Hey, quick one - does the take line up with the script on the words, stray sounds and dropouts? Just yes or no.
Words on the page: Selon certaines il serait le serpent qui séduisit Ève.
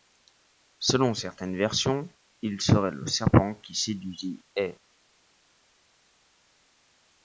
no